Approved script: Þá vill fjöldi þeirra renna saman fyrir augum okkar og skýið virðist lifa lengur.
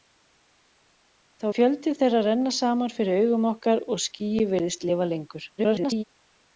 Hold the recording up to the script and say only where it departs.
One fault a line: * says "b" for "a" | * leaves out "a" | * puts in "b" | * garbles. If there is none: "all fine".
* leaves out "vill"
* garbles